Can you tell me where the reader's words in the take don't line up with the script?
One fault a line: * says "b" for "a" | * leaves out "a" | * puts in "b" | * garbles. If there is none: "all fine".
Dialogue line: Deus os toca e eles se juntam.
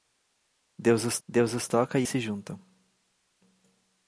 * puts in "deus os"
* leaves out "eles"